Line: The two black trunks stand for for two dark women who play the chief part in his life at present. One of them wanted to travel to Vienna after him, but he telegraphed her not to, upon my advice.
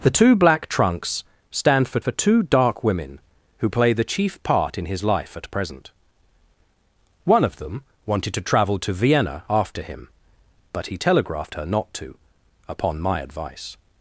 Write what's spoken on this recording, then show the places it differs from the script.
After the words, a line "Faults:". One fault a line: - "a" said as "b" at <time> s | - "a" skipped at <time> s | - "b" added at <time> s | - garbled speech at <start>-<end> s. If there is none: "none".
The two black trunks stand for for two dark women who play the chief part in his life at present. One of them wanted to travel to Vienna after him, but he telegraphed her not to, upon my advice.
Faults:
none